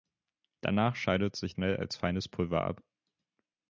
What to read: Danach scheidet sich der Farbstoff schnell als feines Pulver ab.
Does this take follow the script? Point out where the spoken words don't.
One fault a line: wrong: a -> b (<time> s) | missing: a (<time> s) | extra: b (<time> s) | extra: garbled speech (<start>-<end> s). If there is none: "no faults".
missing: der Farbstoff (1.5 s)